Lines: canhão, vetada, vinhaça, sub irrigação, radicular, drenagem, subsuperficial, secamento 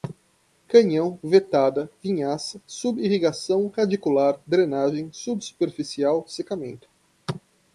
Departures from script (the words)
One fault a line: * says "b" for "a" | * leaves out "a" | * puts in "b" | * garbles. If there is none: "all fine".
all fine